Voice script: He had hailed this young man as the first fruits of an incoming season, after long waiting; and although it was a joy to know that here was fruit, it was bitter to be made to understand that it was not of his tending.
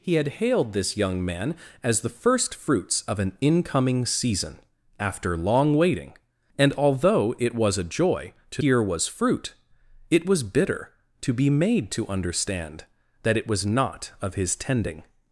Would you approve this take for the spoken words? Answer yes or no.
no